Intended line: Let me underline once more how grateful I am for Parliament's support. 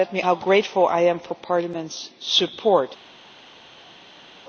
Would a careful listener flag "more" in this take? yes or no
yes